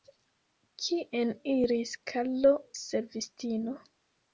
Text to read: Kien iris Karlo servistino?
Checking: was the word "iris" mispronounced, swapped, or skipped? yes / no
no